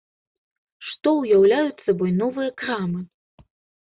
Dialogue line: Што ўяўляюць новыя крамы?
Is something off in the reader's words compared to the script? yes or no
yes